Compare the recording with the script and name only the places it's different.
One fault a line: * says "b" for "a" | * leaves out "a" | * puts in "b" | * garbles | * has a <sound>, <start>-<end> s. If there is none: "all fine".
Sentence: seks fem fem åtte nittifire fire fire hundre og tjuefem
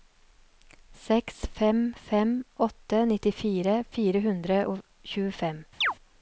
* leaves out "fire"
* has a chirp, 5.8-5.9 s